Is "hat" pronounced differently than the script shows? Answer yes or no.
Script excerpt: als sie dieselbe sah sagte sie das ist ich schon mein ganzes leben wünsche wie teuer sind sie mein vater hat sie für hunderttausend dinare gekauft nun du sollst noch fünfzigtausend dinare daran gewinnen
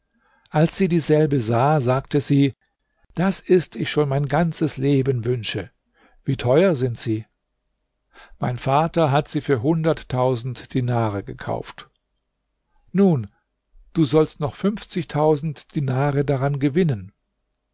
no